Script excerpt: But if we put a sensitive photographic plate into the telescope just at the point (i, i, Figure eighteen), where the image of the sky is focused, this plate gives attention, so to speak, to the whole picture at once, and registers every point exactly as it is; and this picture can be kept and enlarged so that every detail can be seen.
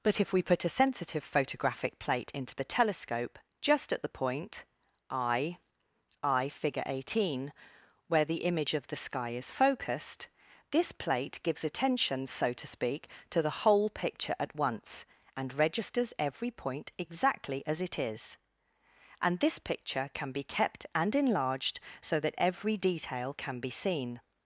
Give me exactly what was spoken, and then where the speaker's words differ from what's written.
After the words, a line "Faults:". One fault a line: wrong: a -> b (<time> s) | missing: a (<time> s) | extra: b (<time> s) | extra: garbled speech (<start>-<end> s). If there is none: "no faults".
But if we put a sensitive photographic plate into the telescope just at the point (i, i, Figure eighteen), where the image of the sky is focused, this plate gives attention, so to speak, to the whole picture at once, and registers every point exactly as it is; and this picture can be kept and enlarged so that every detail can be seen.
Faults:
no faults